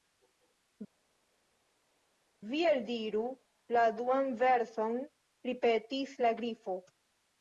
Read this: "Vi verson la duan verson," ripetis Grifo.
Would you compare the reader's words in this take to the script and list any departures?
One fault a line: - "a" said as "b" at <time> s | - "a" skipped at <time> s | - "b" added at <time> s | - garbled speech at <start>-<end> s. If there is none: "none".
- "verson" said as "eldiru" at 2.7 s
- "la" added at 6.3 s